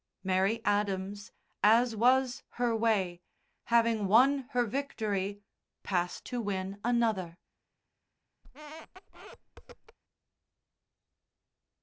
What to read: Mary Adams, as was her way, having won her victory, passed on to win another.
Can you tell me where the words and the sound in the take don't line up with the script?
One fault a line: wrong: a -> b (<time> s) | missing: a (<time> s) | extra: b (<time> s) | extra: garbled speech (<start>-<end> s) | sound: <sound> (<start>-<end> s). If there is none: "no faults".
missing: on (6.2 s)
sound: squeak (8.4-10.0 s)